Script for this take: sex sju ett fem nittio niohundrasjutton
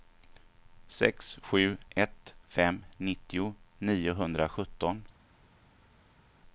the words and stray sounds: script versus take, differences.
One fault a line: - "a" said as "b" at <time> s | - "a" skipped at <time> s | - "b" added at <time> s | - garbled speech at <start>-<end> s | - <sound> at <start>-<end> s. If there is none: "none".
none